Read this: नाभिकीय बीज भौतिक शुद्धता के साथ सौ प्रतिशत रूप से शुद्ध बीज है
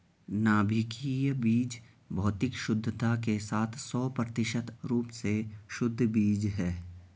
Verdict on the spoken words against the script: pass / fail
pass